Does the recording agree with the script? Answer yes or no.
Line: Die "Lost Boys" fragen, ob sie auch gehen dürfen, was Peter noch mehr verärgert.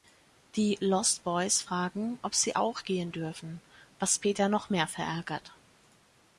yes